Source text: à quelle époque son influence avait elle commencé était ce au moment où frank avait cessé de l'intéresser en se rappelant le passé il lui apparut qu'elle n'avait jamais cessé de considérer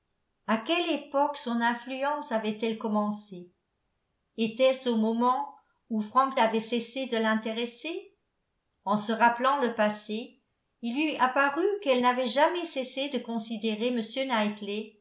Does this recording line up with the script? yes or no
yes